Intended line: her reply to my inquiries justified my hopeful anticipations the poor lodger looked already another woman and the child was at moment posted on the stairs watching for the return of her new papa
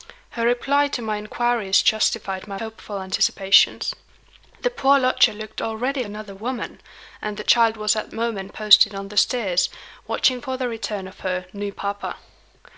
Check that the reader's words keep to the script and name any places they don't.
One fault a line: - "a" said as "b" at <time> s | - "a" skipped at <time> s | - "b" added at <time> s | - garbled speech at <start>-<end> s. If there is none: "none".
none